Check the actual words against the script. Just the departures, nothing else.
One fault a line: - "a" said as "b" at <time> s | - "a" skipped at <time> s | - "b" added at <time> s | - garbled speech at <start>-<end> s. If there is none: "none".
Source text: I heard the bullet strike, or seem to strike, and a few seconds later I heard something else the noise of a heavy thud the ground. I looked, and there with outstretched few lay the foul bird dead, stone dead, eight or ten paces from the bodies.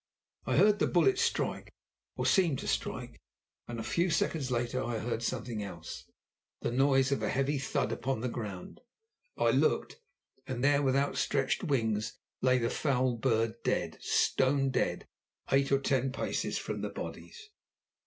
- "upon" added at 7.9 s
- "few" said as "wings" at 11.6 s